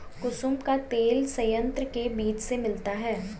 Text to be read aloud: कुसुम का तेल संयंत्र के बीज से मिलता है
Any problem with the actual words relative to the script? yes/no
no